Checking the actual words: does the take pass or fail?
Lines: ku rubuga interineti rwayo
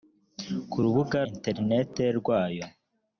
pass